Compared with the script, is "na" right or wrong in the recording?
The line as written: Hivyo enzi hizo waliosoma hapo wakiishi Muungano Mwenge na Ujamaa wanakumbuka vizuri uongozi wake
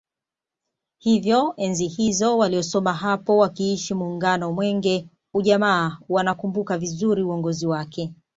wrong